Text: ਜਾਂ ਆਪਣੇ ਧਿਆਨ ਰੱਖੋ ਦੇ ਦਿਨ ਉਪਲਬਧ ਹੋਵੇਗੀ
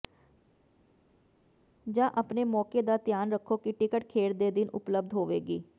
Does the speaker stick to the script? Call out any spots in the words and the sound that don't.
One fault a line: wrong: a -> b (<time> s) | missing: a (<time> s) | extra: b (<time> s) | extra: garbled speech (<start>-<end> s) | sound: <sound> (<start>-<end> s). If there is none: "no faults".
extra: ਮੌਕੇ ਦਾ (2.4 s)
extra: ਕਿ ਟਿਕਟ ਖੇਡ (3.6 s)